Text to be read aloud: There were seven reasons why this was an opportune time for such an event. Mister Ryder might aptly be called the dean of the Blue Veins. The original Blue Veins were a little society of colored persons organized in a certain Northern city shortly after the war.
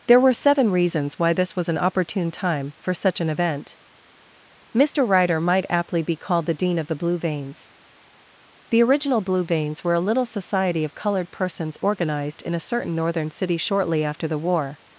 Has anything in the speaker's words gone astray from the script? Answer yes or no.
no